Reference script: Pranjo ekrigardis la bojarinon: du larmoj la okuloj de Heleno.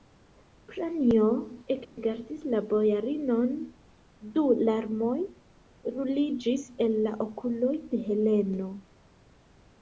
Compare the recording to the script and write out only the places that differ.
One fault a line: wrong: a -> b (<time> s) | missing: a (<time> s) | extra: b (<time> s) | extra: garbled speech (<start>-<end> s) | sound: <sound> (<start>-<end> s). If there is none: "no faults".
sound: dropout (1.8-2.0 s)
extra: ruliĝis el (6.0 s)